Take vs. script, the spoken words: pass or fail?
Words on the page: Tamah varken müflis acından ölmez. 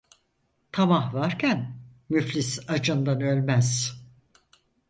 pass